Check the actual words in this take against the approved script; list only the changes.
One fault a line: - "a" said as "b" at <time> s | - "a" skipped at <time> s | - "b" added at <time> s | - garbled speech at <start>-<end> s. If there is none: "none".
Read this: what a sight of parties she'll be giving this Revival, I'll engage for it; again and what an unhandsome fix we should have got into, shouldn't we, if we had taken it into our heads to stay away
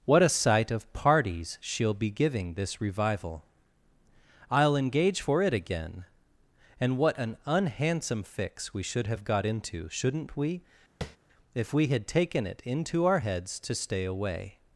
none